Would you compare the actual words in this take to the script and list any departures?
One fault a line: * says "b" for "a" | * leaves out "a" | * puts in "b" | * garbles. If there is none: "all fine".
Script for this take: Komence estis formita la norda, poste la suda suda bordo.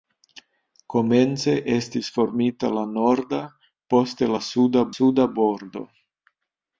all fine